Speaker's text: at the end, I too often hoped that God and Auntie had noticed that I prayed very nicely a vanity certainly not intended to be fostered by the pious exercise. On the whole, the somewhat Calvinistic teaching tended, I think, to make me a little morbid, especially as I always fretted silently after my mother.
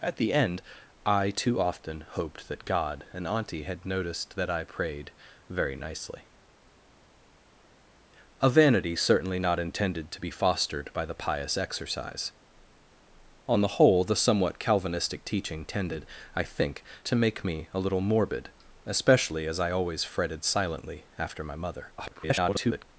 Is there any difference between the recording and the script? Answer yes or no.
yes